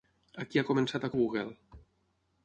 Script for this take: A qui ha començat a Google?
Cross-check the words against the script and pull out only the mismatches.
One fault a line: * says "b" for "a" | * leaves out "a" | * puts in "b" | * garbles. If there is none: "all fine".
all fine